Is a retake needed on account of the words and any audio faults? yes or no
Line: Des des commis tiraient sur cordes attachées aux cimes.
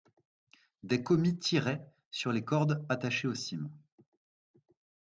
yes